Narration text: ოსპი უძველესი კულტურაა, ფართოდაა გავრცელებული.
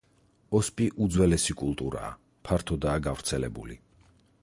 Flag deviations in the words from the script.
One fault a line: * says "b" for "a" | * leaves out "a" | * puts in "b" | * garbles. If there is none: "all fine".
all fine